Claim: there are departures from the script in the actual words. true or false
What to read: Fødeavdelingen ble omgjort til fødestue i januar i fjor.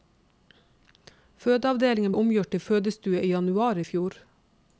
true